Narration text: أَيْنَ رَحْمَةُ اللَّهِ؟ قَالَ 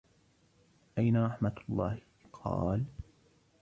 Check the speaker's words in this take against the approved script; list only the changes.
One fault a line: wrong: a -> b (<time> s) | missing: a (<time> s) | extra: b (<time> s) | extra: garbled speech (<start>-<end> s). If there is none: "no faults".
no faults